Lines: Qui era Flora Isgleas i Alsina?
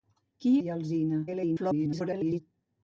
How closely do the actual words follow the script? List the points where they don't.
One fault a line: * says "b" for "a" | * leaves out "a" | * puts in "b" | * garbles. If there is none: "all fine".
* leaves out "era Flora Isgleas"
* garbles